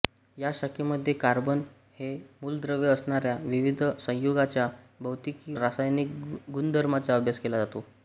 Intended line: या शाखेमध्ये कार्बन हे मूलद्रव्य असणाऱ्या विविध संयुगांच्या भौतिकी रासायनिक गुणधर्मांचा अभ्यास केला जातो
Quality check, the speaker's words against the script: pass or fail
pass